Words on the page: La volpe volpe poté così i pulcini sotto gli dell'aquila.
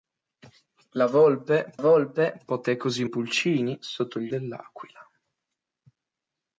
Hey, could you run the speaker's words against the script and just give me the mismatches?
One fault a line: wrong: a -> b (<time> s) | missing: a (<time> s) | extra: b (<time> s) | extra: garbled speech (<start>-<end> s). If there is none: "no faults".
no faults